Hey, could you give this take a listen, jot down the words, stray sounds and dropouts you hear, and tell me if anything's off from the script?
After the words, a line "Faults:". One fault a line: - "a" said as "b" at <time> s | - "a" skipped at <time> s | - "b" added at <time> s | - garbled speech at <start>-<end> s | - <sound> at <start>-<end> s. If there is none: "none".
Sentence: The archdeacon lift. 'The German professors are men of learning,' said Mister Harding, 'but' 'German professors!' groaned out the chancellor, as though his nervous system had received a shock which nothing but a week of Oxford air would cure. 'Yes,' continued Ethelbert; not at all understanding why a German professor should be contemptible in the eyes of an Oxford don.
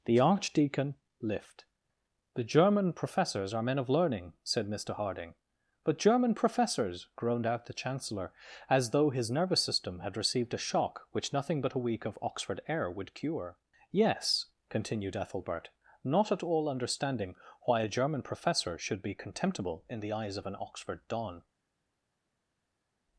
The archdeacon lift. 'The German professors are men of learning,' said Mister Harding, 'but' 'German professors!' groaned out the chancellor, as though his nervous system had received a shock which nothing but a week of Oxford air would cure. 'Yes,' continued Ethelbert; not at all understanding why a German professor should be contemptible in the eyes of an Oxford don.
Faults:
none